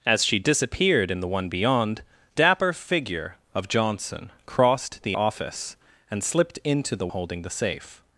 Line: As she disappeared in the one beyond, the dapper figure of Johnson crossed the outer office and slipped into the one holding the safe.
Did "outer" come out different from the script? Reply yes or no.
yes